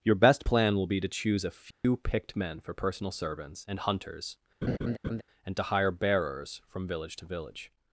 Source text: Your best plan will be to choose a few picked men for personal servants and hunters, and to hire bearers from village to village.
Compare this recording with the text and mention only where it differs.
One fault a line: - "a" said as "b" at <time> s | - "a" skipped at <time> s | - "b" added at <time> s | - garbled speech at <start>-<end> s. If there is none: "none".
none